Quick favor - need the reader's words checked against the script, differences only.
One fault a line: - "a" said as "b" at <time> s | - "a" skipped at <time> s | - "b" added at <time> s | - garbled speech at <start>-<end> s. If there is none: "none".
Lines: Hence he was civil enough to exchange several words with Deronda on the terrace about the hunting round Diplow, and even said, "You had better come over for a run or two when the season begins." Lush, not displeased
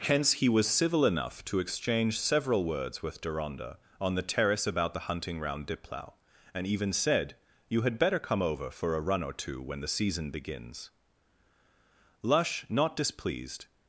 none